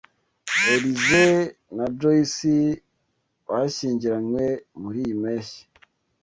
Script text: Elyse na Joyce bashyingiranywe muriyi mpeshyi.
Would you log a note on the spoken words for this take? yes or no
no